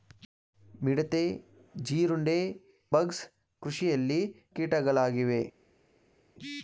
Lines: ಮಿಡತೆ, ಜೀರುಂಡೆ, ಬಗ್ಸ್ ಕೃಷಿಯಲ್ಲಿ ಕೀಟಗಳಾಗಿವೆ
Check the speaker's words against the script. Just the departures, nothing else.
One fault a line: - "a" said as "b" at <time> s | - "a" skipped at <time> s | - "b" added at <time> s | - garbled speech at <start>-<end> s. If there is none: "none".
none